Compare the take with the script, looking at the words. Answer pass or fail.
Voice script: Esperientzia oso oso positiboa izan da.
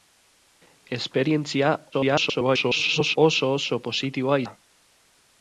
fail